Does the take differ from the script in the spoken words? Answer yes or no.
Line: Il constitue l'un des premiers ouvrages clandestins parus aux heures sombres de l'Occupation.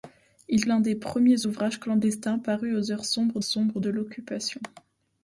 yes